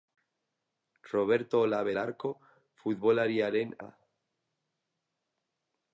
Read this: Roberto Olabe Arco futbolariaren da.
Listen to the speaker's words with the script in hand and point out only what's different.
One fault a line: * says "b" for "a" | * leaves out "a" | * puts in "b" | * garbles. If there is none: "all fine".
all fine